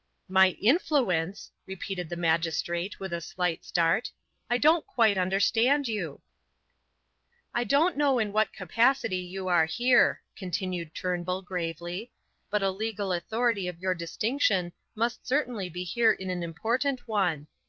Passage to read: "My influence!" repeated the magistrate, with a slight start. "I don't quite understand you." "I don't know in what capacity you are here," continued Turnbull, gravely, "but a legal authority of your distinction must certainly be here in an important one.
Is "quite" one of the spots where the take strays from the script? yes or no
no